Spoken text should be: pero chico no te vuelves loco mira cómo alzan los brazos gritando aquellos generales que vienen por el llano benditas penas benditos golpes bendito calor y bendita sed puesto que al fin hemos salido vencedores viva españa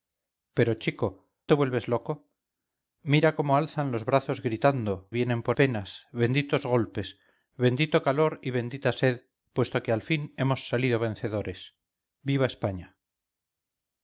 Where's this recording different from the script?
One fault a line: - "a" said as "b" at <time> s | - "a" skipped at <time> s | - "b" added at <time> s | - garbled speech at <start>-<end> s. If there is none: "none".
- "no" skipped at 1.1 s
- "aquellos generales que" skipped at 5.1 s
- "el llano benditas" skipped at 5.6 s